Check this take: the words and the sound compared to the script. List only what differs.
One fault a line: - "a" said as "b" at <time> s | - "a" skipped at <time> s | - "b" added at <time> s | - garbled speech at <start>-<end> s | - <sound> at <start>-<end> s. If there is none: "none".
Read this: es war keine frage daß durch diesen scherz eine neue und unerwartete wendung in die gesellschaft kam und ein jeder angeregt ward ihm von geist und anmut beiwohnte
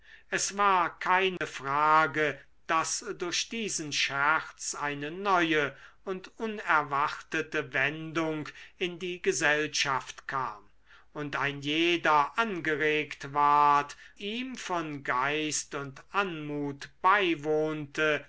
- dropout at 1.4-1.4 s